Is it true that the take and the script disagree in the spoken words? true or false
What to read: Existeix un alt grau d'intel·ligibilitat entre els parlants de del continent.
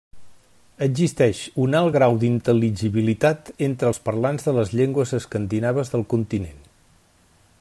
true